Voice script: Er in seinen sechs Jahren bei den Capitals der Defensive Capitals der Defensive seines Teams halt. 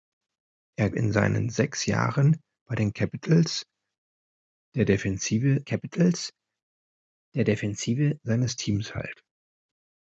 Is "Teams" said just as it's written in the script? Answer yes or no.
yes